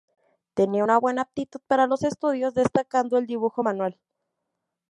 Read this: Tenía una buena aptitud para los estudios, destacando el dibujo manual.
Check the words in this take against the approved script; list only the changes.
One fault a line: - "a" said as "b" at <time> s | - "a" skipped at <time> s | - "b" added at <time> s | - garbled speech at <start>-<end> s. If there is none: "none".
none